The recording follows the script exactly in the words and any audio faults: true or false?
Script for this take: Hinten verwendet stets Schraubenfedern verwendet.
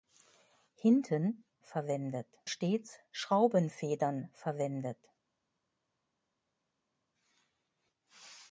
true